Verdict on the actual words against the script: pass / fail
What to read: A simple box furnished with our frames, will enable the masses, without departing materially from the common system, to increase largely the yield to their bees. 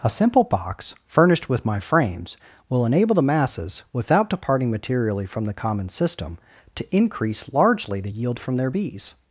fail